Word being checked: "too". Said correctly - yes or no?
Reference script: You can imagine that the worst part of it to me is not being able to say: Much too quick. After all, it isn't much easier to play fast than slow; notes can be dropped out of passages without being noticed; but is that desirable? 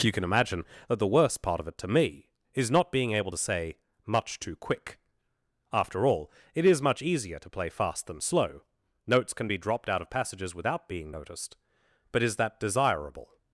yes